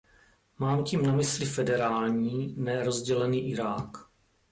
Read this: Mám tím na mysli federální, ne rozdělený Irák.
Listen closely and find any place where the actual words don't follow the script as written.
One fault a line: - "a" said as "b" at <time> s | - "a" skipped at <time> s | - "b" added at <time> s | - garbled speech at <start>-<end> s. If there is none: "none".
none